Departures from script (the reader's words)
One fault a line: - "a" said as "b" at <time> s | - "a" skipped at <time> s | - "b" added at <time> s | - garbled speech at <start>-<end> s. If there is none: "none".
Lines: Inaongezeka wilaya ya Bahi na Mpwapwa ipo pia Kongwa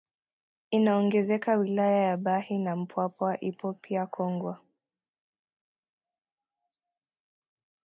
none